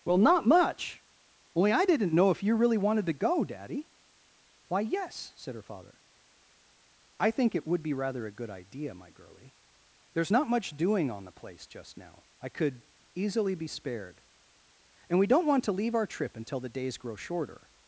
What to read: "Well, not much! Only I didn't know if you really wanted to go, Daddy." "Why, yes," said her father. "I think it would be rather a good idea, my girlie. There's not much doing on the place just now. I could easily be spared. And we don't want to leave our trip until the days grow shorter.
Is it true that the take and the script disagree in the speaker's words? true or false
false